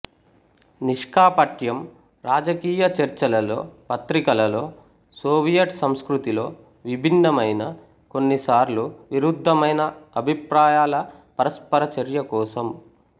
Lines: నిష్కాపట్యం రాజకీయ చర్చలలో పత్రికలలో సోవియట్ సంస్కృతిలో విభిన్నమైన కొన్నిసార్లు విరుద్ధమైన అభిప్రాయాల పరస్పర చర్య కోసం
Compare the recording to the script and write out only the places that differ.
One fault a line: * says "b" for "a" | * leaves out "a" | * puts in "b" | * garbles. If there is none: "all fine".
all fine